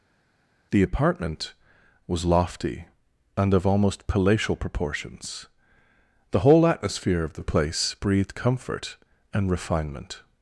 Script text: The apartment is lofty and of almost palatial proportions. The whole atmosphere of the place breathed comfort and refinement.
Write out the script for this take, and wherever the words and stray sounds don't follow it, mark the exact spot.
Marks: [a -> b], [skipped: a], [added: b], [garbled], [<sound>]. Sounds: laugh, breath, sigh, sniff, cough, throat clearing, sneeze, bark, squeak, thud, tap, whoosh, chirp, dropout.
The apartment [is -> was] lofty and of almost palatial proportions. The whole atmosphere of the place breathed comfort and refinement.